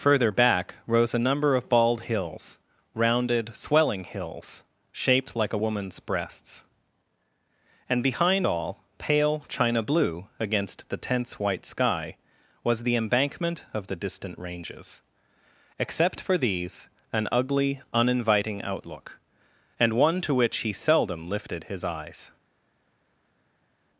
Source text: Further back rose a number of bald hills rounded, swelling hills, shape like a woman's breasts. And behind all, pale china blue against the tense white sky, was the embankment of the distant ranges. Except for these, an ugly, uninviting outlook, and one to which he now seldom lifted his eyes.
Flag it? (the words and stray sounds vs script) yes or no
yes